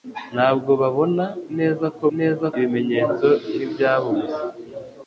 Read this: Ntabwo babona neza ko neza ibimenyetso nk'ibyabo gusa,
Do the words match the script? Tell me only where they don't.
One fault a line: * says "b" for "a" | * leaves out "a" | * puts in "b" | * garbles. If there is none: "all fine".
all fine